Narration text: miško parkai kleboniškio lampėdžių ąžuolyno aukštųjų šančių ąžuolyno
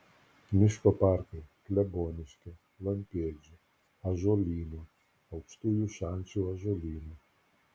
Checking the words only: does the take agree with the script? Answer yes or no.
yes